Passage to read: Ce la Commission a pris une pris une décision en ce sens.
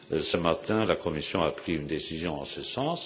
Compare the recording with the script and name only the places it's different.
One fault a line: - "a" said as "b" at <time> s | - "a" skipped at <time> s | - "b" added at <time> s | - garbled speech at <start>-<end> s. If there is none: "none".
- "matin" added at 0.3 s
- "pris une" skipped at 1.9 s